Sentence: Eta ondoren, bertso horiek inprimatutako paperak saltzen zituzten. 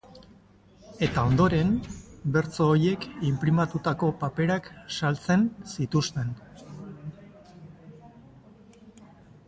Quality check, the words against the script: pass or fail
pass